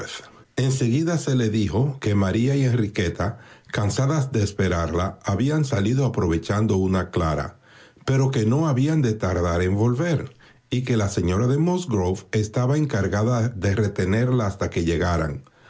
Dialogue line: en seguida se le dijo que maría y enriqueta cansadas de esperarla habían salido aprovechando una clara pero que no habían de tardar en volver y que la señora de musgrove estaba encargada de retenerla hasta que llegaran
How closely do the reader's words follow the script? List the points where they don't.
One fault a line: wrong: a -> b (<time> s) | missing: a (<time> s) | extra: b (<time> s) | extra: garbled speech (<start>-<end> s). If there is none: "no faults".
no faults